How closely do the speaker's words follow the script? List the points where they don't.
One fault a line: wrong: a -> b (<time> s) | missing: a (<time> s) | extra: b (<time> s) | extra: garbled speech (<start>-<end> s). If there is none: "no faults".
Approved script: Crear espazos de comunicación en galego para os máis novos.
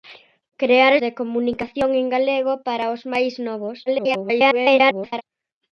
missing: espazos (0.9 s)
extra: garbled speech (3.9-5.2 s)